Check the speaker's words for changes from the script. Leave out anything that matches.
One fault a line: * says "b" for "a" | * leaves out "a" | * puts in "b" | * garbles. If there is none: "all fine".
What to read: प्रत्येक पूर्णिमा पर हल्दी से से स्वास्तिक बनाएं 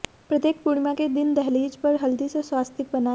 * puts in "के दिन दहलीज"
* leaves out "से"